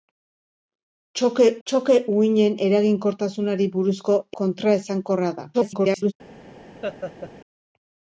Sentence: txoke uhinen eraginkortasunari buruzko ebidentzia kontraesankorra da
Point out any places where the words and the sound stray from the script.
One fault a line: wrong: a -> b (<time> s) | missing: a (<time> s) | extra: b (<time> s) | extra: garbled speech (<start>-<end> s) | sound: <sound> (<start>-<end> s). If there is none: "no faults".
extra: txoke (1.7 s)
missing: ebidentzia (4.1 s)
extra: garbled speech (5.5-6.1 s)
sound: laugh (6.8-7.3 s)